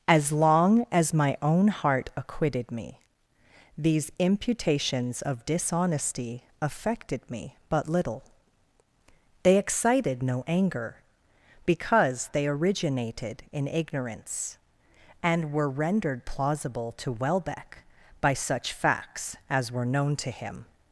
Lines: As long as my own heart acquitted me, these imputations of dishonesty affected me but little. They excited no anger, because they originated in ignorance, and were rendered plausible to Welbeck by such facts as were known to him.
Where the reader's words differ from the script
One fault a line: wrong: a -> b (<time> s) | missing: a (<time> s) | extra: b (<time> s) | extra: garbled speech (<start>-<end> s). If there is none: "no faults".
no faults